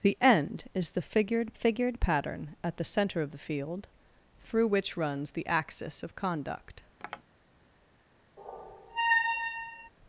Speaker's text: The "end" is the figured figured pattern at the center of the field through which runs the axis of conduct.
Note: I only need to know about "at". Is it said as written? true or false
true